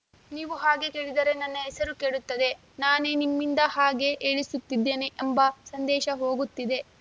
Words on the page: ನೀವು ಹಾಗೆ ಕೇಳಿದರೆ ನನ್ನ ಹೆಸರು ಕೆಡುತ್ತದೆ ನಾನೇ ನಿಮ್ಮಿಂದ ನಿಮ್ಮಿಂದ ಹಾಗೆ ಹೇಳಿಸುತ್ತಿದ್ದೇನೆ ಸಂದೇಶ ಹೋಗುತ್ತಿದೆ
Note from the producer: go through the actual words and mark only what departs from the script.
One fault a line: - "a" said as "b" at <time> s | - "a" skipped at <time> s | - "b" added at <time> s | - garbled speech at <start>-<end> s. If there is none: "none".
- "ನಿಮ್ಮಿಂದ" skipped at 3.6 s
- "ಎಂಬ" added at 5.2 s